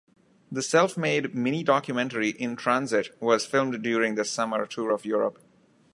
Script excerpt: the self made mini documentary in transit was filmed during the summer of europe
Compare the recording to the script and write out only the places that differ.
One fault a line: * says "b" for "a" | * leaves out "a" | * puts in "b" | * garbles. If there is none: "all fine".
* puts in "tour"